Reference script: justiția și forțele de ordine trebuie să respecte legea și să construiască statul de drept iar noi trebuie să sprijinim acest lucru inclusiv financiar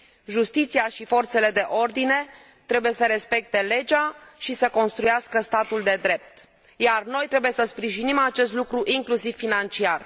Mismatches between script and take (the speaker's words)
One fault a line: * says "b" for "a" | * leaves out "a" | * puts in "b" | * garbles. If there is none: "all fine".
all fine